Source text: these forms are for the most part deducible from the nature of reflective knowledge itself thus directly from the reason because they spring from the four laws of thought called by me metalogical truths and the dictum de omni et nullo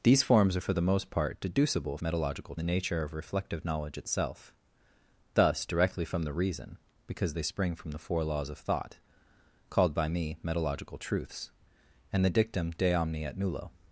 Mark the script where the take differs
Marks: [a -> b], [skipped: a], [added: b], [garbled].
these forms are for the most part deducible [from -> metalogical] the nature of reflective knowledge itself thus directly from the reason because they spring from the four laws of thought called by me metalogical truths and the dictum de omni et nullo